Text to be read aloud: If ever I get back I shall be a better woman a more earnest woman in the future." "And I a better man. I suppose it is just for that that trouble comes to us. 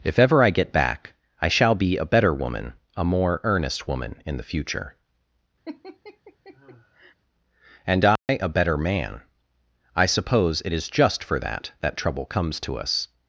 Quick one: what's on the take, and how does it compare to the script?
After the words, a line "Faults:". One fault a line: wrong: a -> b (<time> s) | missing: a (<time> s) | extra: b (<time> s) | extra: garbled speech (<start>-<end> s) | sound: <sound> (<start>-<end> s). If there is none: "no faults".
If ever I get back I shall be a better woman a more earnest woman in the future." "And I a better man. I suppose it is just for that that trouble comes to us.
Faults:
sound: laugh (5.7-7.2 s)
sound: dropout (8.2-8.3 s)